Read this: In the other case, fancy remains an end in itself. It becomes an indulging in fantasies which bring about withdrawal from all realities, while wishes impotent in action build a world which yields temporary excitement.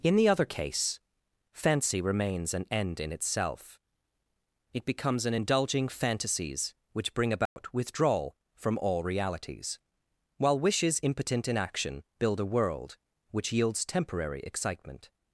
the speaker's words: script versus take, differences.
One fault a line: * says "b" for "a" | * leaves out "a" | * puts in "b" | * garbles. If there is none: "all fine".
* leaves out "in"